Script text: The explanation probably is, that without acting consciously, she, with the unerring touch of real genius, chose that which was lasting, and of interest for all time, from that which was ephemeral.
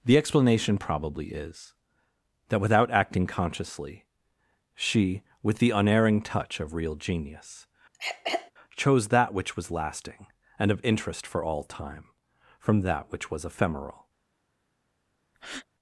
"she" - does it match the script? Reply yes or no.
yes